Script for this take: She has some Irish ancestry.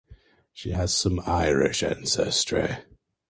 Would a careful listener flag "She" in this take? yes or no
no